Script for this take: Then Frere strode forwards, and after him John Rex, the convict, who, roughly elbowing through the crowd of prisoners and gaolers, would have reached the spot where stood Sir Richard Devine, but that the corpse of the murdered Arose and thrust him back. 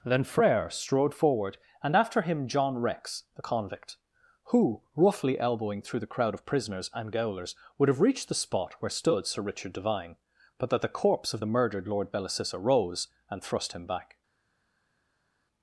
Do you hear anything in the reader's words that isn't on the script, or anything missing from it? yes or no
yes